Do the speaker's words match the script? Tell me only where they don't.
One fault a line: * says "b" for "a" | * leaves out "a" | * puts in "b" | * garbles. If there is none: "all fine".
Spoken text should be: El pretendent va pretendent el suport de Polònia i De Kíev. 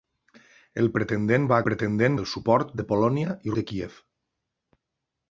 all fine